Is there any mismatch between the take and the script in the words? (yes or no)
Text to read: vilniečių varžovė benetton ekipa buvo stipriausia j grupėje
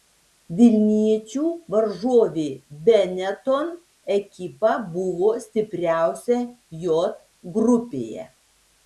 no